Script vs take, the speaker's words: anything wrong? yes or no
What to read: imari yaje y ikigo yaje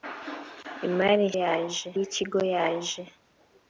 no